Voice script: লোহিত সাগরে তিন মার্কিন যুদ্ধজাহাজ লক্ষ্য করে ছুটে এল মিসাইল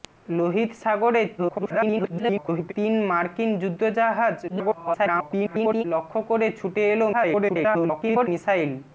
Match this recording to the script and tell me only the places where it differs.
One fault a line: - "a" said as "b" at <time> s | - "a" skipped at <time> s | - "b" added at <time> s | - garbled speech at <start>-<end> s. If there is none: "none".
- garbled speech at 1.4-2.7 s
- garbled speech at 4.5-5.8 s
- garbled speech at 7.1-8.3 s